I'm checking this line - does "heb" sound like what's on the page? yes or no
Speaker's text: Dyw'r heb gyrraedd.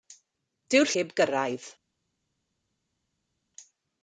yes